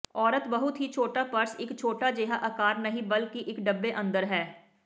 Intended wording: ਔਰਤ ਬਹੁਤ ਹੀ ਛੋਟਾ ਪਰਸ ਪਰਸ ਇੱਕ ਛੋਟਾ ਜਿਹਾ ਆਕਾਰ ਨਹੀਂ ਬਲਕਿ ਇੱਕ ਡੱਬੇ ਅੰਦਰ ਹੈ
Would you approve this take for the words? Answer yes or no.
no